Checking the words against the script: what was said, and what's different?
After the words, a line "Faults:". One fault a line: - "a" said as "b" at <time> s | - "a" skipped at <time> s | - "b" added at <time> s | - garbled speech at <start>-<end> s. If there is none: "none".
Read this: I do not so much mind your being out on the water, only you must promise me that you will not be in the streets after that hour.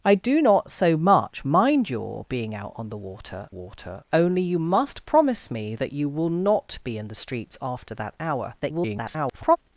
I do not so much mind your being out on the water water, only you must promise me that you will not be in the streets after that hour. [garbled]
Faults:
- "water" added at 3.5 s
- garbled speech at 8.6-9.6 s